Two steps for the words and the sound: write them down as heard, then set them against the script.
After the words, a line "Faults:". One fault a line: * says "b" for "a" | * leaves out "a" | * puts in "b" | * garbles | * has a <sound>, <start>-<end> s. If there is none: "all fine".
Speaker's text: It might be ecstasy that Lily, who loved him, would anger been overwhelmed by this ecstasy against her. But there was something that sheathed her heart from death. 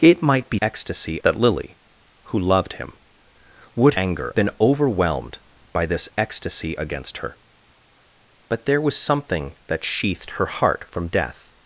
It might be ecstasy that Lily, who loved him, would anger been overwhelmed by this ecstasy against her. But there was something that sheathed her heart from death.
Faults:
all fine